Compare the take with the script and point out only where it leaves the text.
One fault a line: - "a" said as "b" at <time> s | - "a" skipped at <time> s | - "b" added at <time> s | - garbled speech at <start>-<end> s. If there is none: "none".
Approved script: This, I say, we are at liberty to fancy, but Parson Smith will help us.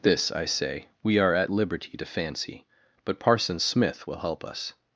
none